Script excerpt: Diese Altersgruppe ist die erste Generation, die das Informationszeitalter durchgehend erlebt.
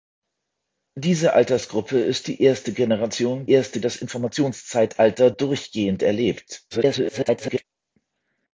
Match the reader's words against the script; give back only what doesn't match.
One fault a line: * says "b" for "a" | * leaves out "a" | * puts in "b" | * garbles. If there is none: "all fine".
* says "erste" for "die"
* garbles